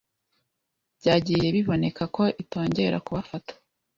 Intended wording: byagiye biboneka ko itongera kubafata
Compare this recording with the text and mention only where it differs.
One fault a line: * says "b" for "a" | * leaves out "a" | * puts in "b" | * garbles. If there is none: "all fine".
all fine